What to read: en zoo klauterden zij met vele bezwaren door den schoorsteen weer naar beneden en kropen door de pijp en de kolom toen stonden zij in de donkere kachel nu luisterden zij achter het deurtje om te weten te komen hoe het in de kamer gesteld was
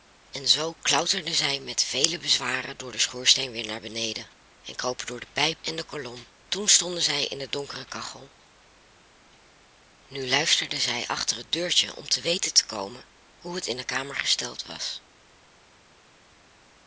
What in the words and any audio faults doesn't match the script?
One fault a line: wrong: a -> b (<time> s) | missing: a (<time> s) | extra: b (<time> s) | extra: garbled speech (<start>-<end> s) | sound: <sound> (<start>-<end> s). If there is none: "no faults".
no faults